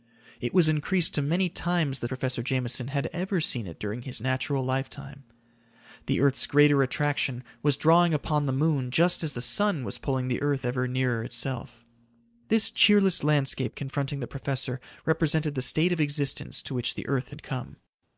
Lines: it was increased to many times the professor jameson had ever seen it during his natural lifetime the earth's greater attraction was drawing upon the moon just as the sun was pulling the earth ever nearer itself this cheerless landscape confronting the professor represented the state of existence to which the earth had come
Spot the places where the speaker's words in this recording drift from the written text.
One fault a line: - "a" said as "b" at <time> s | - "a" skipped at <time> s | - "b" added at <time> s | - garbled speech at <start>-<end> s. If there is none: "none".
none